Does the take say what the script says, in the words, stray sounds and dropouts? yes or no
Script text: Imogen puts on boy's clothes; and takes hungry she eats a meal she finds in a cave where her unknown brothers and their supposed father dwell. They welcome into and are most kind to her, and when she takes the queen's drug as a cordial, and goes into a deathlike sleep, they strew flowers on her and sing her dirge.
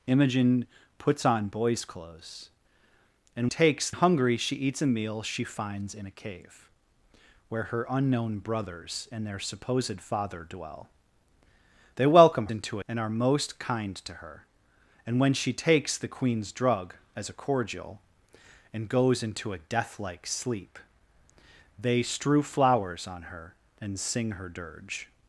yes